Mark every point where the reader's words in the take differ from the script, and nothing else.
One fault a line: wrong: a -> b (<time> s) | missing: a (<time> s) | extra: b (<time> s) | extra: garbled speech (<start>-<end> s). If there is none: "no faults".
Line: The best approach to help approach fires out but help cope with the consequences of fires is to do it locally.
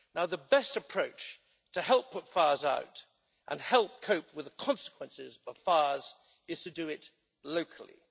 wrong: approach -> put (2.1 s)
wrong: but -> and (3.5 s)